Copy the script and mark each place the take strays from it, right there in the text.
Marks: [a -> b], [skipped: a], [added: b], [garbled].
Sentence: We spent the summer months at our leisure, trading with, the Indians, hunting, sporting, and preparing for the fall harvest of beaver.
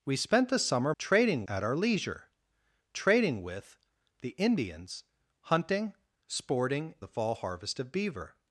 We spent the summer [months -> trading] at our leisure, trading with, the Indians, hunting, sporting, [skipped: and preparing for] the fall harvest of beaver.